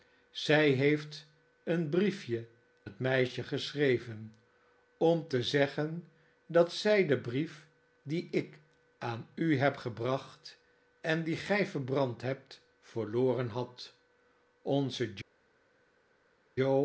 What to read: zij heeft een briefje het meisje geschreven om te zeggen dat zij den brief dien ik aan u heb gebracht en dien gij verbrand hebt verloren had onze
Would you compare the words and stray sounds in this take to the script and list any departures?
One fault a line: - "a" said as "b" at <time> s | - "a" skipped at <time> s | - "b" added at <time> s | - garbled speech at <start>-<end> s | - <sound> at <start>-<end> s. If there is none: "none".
none